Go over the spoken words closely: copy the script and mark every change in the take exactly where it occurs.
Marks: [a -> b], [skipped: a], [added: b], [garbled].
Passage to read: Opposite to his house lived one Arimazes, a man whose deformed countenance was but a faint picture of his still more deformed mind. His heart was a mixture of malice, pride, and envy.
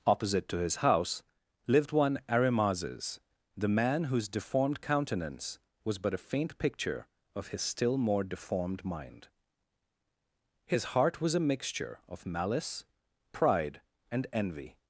Opposite to his house lived one Arimazes, [a -> the] man whose deformed countenance was but a faint picture of his still more deformed mind. His heart was a mixture of malice, pride, and envy.